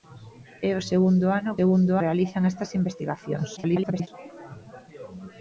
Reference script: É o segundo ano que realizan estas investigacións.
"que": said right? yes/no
no